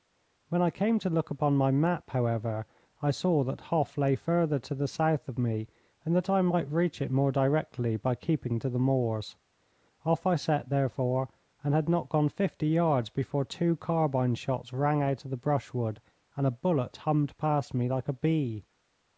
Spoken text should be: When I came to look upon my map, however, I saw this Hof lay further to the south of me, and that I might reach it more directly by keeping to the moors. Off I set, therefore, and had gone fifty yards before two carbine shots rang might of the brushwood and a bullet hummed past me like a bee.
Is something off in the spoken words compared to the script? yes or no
yes